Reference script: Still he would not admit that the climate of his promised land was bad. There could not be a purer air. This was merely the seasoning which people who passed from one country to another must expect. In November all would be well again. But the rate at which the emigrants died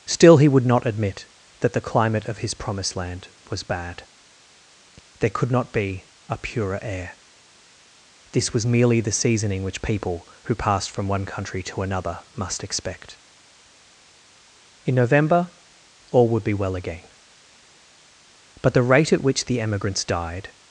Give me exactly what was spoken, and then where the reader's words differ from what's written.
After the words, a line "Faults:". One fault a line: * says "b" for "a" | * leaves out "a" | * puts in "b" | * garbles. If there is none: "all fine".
Still he would not admit that the climate of his promised land was bad. There could not be a purer air. This was merely the seasoning which people who passed from one country to another must expect. In November all would be well again. But the rate at which the emigrants died
Faults:
all fine